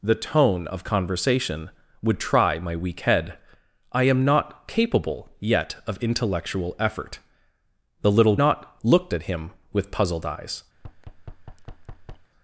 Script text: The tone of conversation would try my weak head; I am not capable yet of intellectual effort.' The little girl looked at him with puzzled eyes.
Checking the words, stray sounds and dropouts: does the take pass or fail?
fail